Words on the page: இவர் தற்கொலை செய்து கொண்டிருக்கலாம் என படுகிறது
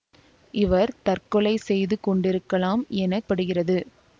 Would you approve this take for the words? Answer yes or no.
yes